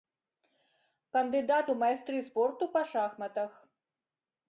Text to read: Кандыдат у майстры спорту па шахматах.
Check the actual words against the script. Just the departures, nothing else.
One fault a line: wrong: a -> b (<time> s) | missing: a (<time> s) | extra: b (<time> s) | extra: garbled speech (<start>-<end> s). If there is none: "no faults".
no faults